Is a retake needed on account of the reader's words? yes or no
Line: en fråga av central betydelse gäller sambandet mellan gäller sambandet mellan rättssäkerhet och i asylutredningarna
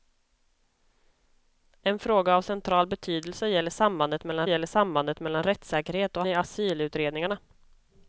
no